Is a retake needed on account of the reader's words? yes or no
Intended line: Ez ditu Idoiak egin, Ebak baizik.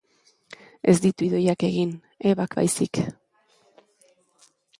no